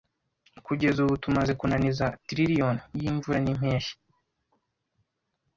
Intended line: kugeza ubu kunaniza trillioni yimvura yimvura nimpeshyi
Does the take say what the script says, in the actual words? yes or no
no